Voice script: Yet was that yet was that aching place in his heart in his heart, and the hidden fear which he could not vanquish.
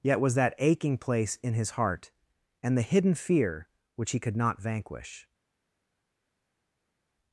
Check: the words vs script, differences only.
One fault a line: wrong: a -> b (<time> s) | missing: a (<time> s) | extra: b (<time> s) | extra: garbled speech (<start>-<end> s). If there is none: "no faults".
missing: yet was that (0.6 s)
missing: in his heart (2.1 s)